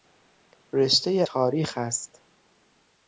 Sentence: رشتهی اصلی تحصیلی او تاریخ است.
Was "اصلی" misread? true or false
true